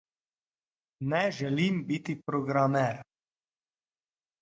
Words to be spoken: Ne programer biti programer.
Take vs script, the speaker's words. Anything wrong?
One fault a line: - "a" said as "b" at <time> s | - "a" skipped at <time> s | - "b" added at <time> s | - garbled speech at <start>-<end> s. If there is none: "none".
- "programer" said as "želim" at 1.4 s